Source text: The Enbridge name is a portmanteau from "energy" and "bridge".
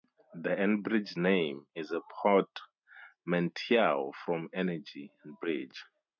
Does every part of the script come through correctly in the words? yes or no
yes